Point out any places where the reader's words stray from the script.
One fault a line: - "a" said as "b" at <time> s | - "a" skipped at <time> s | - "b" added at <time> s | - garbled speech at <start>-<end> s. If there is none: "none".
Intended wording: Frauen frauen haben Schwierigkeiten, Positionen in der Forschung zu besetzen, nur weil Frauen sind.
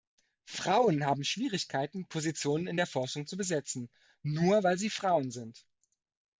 - "frauen" skipped at 1.1 s
- "sie" added at 4.8 s